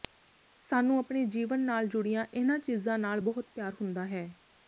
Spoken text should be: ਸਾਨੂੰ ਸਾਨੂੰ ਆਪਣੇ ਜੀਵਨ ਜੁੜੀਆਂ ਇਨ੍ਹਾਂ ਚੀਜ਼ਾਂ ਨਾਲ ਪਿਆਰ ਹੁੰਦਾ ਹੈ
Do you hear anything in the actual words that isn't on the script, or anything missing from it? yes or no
yes